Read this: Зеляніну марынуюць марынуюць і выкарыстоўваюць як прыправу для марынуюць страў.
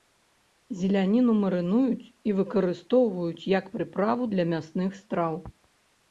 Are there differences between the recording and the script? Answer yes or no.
yes